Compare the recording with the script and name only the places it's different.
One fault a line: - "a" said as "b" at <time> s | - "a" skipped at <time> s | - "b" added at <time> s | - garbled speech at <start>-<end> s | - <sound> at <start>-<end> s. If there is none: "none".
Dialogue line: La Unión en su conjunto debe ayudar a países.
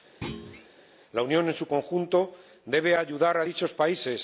- thud at 0.2-0.7 s
- "dichos" added at 3.4 s